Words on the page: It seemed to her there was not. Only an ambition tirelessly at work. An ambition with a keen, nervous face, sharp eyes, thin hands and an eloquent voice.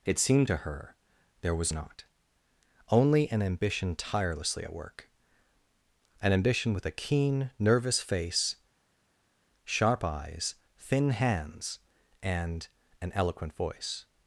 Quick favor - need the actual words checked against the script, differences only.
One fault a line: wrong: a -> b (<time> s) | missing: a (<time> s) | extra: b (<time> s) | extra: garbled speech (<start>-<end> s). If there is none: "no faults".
no faults